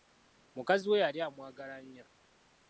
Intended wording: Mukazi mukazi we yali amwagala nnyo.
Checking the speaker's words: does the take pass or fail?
fail